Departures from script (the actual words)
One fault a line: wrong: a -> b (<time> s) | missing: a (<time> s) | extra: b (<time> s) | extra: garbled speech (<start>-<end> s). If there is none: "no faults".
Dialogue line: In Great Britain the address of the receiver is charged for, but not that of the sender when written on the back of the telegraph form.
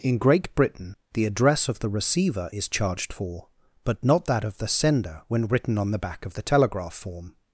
no faults